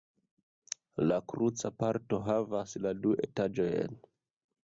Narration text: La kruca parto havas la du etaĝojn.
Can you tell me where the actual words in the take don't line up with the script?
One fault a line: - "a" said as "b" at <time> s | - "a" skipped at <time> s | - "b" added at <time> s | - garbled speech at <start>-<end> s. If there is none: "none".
none